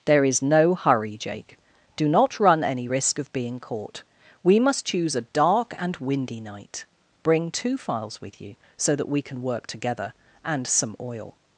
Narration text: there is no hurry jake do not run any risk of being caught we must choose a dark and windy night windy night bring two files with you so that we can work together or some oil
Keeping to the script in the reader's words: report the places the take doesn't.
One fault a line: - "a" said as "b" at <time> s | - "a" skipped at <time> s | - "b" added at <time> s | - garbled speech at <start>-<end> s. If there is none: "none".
- "windy night" skipped at 6.8 s
- "or" said as "and" at 10.4 s